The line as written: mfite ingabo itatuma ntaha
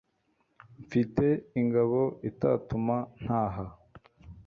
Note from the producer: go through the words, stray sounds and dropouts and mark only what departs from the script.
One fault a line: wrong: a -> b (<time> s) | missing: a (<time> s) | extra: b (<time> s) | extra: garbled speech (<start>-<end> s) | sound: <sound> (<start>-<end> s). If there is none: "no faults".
no faults